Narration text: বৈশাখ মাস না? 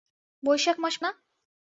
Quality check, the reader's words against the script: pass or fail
pass